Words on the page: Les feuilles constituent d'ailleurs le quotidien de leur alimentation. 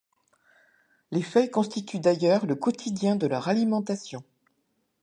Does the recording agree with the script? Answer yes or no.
yes